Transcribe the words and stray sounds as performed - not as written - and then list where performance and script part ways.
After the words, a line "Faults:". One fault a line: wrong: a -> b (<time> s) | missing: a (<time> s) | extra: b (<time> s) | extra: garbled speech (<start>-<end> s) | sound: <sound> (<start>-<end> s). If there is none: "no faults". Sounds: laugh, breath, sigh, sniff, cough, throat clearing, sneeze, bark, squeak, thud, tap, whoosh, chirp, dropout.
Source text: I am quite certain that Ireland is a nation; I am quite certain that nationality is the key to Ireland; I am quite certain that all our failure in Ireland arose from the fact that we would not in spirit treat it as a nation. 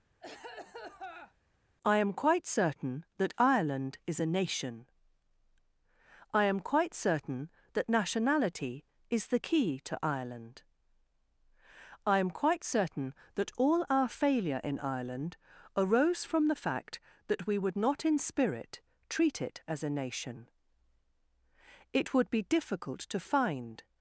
I am quite certain that Ireland is a nation; I am quite certain that nationality is the key to Ireland; I am quite certain that all our failure in Ireland arose from the fact that we would not in spirit treat it as a nation. It would be difficult to find
Faults:
sound: cough (0.2-1.3 s)
extra: It would be difficult to find (21.9 s)